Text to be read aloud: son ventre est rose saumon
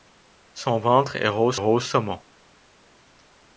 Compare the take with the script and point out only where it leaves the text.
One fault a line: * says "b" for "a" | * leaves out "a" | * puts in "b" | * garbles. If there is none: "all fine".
* puts in "rose"